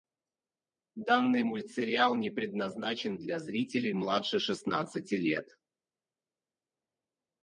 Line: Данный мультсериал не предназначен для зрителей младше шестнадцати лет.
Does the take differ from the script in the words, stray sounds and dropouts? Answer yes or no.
no